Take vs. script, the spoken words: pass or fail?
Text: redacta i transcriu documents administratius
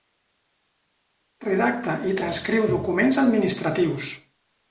pass